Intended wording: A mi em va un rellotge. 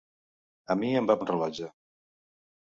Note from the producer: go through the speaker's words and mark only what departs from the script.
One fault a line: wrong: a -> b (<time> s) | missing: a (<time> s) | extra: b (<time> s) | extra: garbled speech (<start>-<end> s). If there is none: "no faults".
no faults